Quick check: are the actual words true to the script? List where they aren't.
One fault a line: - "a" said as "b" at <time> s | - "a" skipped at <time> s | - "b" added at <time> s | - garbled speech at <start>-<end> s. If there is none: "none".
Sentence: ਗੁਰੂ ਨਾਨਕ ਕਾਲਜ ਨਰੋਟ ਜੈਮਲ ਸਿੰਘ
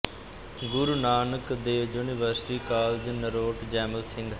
- "ਦੇਵ ਯੂਨੀਵਰਸਿਟੀ" added at 1.6 s